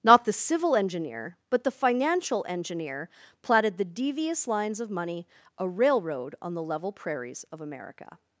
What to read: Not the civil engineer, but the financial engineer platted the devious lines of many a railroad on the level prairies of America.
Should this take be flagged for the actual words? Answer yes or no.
yes